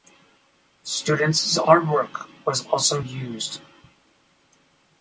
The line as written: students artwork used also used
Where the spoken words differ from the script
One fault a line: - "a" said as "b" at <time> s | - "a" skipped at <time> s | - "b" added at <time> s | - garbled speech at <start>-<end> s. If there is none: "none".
- "used" said as "was" at 2.4 s